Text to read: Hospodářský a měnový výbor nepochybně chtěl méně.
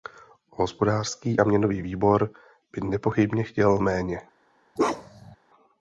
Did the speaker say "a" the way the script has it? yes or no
yes